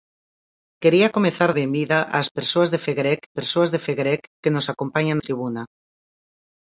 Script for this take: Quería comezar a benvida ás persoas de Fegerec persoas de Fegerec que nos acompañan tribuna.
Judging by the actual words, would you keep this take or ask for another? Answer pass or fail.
pass